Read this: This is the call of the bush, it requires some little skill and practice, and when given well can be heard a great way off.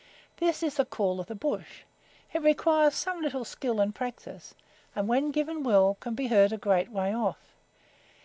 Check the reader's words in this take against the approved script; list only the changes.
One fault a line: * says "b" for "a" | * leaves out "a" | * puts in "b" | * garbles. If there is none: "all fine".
all fine